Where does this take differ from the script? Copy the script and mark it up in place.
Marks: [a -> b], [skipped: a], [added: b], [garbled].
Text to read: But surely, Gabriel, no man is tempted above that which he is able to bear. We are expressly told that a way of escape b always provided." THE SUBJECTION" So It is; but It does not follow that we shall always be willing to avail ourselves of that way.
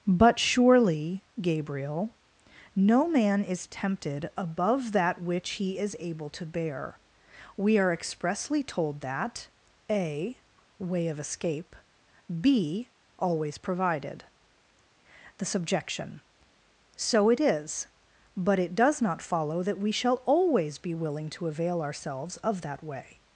But surely, Gabriel, no man is tempted above that which he is able to bear. We are expressly told that a way of escape b always provided." THE SUBJECTION" So It is; but It does not follow that we shall always be willing to avail ourselves of that way.